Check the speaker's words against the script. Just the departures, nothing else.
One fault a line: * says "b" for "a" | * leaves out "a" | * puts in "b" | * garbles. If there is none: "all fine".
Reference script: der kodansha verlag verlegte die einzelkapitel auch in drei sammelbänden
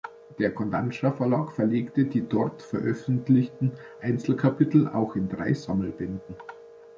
* puts in "dort veröffentlichten"